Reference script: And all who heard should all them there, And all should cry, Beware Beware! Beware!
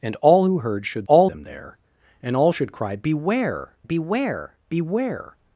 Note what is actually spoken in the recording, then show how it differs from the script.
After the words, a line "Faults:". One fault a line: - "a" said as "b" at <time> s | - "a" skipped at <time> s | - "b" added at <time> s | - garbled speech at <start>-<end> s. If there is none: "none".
And all who heard should all them there, And all should cry, Beware Beware! Beware!
Faults:
none